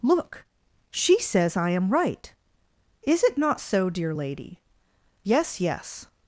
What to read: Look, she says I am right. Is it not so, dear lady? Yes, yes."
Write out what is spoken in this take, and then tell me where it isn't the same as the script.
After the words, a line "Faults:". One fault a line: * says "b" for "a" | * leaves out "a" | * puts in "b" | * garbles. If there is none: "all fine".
Look, she says I am right. Is it not so, dear lady? Yes, yes."
Faults:
all fine